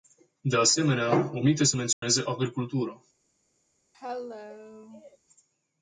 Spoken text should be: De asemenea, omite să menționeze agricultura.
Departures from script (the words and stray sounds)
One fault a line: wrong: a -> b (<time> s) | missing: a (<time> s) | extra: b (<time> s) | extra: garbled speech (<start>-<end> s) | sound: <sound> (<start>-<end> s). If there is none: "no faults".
sound: dropout (1.9-2.0 s)
sound: cough (3.9-5.2 s)